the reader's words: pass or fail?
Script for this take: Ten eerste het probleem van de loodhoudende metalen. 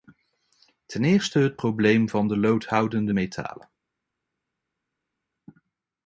pass